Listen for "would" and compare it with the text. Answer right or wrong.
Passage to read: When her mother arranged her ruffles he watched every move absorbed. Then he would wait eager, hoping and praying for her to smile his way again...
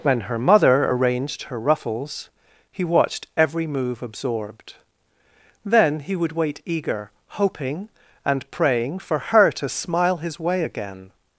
right